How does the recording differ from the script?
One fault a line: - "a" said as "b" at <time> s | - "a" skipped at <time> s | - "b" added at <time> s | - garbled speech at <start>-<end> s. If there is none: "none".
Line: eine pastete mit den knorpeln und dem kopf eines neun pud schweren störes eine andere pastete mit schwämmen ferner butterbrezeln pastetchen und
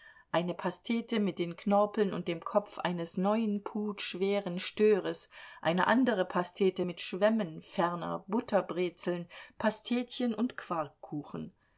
none